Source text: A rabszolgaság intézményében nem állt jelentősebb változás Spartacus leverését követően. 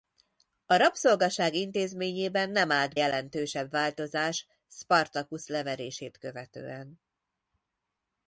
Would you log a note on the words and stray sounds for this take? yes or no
no